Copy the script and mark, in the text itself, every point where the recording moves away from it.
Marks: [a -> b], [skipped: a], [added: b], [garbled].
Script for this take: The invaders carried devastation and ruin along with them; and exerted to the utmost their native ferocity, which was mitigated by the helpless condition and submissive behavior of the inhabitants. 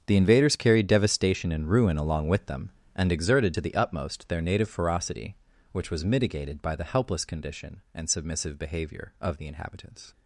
The invaders carried devastation and ruin along with them; and exerted to the utmost their native ferocity, which was mitigated by the helpless condition and submissive behavior of the inhabitants.